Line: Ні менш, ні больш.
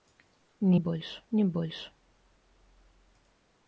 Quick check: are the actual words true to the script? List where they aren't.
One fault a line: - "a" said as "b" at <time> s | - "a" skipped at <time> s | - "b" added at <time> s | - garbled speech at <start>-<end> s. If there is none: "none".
- "менш" said as "больш" at 0.7 s